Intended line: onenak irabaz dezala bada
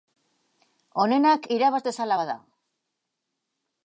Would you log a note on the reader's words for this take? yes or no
no